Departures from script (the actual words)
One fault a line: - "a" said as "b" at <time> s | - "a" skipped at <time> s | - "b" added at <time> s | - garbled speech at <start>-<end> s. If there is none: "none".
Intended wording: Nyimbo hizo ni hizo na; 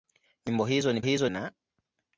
none